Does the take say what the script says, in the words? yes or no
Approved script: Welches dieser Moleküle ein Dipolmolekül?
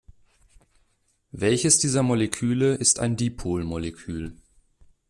no